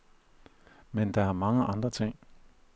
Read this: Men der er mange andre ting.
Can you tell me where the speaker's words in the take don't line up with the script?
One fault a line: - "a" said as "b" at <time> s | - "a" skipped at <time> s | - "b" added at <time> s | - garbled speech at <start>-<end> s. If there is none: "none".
none